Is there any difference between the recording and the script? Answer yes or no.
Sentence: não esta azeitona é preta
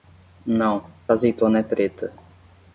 yes